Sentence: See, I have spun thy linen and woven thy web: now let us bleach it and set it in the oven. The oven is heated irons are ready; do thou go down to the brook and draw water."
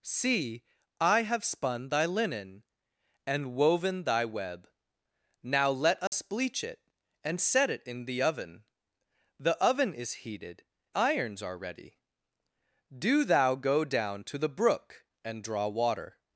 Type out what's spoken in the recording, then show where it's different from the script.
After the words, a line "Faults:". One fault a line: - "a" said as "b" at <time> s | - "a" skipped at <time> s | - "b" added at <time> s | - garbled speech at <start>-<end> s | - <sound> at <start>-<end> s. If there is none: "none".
See, I have spun thy linen and woven thy web: now let us bleach it and set it in the oven. The oven is heated irons are ready; do thou go down to the brook and draw water."
Faults:
- dropout at 6.1-6.1 s